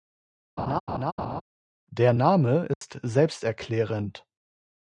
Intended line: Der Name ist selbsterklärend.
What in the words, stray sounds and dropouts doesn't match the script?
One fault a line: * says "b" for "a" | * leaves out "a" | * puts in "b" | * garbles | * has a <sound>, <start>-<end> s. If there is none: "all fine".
* has a laugh, 0.6-1.4 s
* has a dropout, 2.7-2.8 s